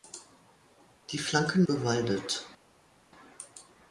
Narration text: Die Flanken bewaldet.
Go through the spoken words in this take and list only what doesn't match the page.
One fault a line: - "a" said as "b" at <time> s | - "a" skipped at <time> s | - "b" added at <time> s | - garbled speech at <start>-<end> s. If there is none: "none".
none